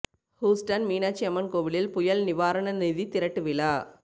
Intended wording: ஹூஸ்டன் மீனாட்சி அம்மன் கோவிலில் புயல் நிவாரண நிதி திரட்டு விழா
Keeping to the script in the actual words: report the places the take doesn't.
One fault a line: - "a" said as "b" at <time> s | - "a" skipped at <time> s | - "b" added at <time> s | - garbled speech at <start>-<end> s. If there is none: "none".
none